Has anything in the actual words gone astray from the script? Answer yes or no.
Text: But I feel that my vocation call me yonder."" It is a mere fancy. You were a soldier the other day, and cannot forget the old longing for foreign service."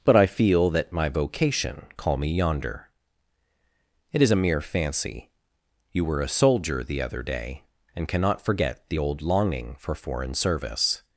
no